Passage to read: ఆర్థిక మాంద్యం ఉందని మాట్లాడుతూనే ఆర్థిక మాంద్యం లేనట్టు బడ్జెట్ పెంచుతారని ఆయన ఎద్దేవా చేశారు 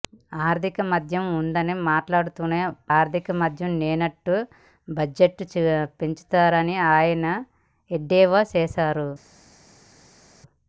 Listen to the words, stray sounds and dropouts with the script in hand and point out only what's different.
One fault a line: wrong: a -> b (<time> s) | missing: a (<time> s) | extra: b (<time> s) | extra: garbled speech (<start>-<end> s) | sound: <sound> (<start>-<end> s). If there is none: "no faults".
no faults